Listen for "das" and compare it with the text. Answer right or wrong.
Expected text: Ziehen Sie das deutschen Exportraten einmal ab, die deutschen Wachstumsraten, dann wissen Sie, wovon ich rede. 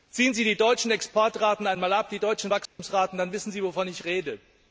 wrong